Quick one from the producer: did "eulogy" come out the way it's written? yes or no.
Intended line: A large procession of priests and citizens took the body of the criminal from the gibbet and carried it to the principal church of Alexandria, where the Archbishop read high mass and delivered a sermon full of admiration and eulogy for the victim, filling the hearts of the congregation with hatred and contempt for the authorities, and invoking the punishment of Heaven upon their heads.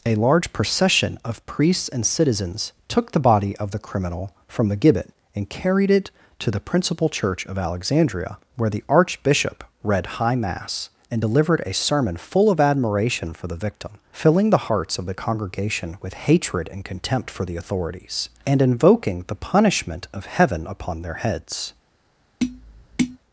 no